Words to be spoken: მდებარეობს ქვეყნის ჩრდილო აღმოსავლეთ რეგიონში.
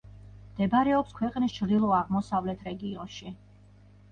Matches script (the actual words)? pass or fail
pass